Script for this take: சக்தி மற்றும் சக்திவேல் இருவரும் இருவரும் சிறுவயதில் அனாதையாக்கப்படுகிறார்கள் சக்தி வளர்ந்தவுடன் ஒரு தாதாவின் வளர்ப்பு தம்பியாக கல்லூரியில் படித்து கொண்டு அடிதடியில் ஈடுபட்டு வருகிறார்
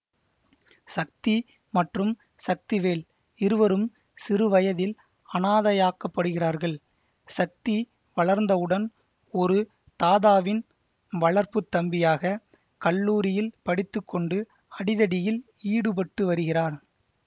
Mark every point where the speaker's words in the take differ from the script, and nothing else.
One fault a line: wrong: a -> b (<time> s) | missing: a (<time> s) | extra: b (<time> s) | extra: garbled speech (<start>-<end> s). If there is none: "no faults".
missing: இருவரும் (3.8 s)